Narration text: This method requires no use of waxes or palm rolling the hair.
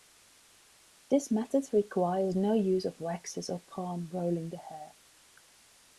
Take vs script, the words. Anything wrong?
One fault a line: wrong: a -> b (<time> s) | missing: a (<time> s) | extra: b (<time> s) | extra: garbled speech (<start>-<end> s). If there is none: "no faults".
no faults